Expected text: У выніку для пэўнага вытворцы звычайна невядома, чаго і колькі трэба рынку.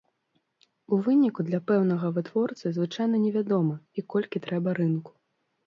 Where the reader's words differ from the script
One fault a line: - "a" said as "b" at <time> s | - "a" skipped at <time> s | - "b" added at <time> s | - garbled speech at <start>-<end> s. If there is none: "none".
- "чаго" skipped at 3.8 s